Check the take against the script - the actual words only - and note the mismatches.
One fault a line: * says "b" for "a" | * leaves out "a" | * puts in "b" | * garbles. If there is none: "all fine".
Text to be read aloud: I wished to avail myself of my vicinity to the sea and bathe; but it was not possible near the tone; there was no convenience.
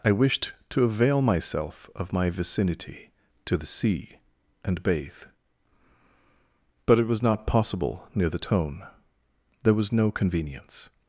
all fine